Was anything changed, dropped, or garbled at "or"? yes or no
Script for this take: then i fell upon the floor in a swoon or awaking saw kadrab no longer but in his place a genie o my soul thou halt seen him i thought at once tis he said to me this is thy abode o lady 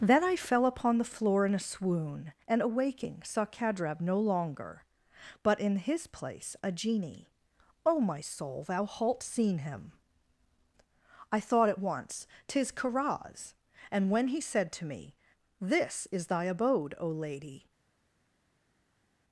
yes